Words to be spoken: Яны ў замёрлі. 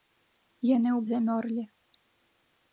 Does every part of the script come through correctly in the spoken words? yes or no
yes